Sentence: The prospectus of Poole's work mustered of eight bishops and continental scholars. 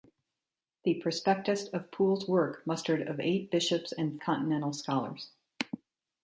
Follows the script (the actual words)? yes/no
yes